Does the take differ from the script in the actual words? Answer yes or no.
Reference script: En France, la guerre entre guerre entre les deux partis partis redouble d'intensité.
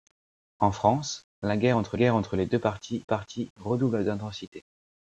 no